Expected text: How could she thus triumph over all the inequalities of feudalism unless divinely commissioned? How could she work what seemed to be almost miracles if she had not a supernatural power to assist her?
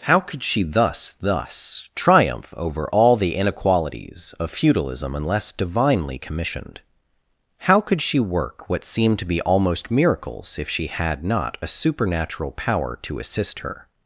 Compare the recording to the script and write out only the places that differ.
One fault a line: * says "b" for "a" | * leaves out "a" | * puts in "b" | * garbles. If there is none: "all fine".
* puts in "thus"